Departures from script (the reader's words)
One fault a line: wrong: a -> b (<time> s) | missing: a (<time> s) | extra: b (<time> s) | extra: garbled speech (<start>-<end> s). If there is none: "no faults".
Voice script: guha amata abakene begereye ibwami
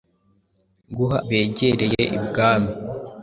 missing: amata abakene (1.2 s)